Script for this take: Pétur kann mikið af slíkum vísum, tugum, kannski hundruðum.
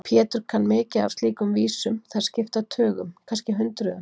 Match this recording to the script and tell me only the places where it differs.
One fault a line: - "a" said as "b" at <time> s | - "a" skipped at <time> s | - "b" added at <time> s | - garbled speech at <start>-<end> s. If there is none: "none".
- "þær skipta" added at 2.1 s